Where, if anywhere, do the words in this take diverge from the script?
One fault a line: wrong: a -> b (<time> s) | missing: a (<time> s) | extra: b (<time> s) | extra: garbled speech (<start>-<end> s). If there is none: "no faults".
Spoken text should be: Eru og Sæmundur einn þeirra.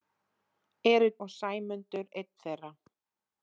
no faults